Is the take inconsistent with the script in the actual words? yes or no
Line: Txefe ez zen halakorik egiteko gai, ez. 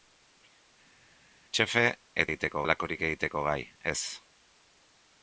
yes